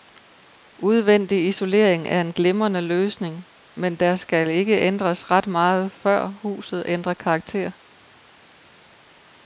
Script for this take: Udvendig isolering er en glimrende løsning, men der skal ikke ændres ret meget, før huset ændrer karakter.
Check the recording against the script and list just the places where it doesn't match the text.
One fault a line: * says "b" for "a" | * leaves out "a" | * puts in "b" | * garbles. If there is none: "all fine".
all fine